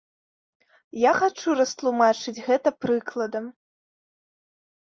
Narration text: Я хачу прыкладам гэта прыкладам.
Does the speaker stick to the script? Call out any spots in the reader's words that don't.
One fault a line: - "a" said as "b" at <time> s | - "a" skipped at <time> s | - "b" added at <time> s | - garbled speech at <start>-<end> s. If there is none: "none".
- "прыкладам" said as "растлумачыць" at 1.6 s